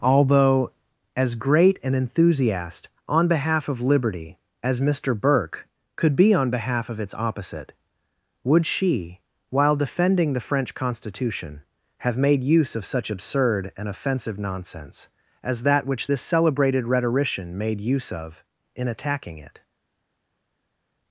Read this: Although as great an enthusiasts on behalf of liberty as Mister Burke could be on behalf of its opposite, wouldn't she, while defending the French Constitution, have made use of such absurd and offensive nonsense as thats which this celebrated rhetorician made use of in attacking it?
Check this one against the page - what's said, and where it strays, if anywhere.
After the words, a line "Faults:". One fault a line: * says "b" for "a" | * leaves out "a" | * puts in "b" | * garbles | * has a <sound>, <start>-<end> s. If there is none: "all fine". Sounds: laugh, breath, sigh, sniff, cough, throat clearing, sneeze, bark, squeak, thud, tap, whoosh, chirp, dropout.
Although as great an enthusiast on behalf of liberty as Mister Burke could be on behalf of its opposite, would she, while defending the French Constitution, have made use of such absurd and offensive nonsense as that which this celebrated rhetorician made use of in attacking it?
Faults:
* says "enthusiast" for "enthusiasts"
* says "would" for "wouldn't"
* says "that" for "thats"